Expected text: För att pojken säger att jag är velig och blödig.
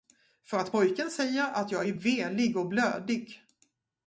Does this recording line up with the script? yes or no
yes